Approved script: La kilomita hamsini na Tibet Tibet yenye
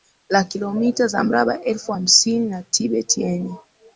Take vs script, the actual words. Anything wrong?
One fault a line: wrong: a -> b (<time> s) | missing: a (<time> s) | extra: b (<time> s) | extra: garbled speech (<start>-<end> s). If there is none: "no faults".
extra: za mraba elfu (1.1 s)
missing: Tibet (3.2 s)